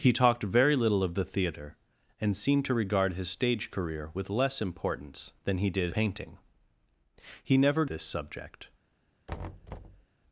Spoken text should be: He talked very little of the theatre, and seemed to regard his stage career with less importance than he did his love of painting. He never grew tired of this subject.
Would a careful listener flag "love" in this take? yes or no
yes